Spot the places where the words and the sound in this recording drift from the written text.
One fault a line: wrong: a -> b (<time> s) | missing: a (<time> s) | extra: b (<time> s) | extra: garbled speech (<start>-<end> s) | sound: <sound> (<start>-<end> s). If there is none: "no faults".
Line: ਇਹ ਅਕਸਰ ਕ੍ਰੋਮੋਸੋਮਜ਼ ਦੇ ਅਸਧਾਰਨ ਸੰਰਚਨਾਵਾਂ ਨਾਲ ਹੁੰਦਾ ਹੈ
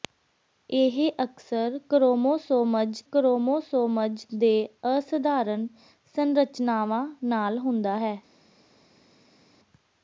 extra: ਕ੍ਰੋਮੋਸੋਮਜ਼ (3.1 s)